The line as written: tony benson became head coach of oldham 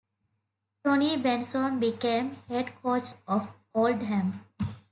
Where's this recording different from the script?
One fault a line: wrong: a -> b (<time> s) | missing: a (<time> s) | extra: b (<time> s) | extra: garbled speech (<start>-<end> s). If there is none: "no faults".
no faults